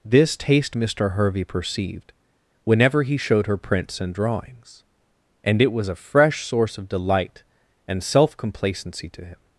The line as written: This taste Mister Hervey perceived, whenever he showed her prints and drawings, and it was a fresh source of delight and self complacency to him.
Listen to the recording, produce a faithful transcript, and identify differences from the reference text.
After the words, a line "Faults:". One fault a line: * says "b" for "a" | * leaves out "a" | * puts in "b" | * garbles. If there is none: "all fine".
This taste Mister Hervey perceived, whenever he showed her prints and drawings, and it was a fresh source of delight and self complacency to him.
Faults:
all fine